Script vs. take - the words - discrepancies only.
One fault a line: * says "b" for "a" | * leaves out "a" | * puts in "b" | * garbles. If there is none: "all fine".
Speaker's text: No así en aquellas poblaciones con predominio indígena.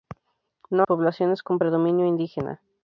* leaves out "así en aquellas"